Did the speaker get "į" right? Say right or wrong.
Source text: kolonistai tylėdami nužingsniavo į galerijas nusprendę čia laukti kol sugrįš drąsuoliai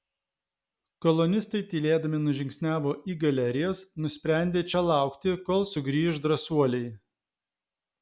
right